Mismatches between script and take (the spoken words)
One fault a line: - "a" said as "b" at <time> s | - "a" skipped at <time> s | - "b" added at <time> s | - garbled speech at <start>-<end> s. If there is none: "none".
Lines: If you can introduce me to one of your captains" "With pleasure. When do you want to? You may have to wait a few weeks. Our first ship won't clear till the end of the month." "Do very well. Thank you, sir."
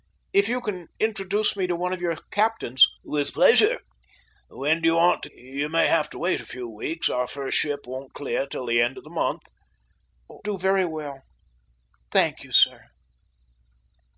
none